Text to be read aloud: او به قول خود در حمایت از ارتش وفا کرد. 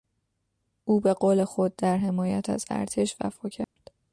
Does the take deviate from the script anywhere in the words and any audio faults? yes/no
yes